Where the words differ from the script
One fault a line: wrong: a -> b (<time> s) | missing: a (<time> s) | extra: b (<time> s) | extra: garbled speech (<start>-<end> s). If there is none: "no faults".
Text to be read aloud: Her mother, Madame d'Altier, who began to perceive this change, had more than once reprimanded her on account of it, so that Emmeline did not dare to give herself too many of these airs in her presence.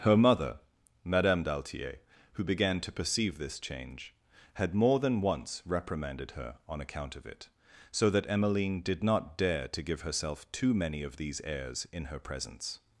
no faults